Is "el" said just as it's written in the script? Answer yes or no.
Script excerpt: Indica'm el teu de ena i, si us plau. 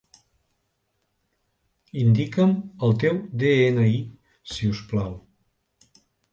yes